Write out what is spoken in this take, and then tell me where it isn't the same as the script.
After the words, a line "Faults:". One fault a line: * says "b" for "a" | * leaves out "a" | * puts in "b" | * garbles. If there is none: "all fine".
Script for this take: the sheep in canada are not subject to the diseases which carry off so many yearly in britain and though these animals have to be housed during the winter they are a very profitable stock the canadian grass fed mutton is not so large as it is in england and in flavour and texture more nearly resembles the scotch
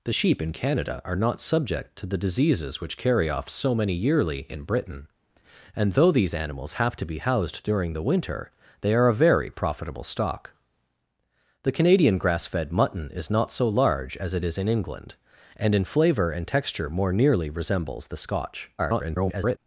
the sheep in canada are not subject to the diseases which carry off so many yearly in britain and though these animals have to be housed during the winter they are a very profitable stock the canadian grass fed mutton is not so large as it is in england and in flavour and texture more nearly resembles the scotch [garbled]
Faults:
* garbles